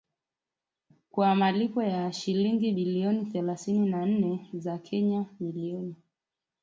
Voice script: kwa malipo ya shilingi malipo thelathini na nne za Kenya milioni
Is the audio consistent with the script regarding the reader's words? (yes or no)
no